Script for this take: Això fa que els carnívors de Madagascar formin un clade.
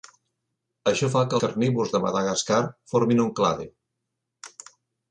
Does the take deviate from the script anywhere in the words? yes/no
yes